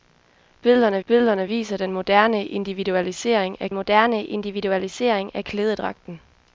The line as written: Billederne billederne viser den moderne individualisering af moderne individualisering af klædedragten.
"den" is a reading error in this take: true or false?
false